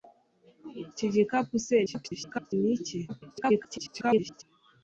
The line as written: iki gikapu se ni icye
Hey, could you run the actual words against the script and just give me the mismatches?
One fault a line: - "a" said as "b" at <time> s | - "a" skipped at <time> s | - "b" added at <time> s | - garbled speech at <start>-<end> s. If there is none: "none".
- garbled speech at 1.9-2.5 s
- garbled speech at 3.1-4.4 s